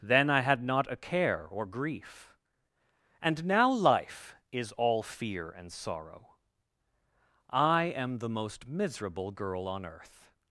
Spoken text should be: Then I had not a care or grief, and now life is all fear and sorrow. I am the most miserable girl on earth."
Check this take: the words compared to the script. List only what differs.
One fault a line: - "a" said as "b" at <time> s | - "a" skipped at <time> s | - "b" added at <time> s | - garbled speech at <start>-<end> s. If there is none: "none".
none